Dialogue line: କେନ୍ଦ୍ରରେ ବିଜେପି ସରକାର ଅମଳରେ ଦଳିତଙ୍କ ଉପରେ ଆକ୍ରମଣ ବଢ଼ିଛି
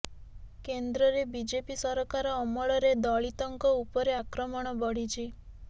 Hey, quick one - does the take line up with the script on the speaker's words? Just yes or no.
yes